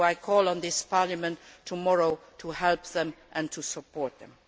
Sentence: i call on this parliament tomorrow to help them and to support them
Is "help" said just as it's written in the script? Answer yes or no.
yes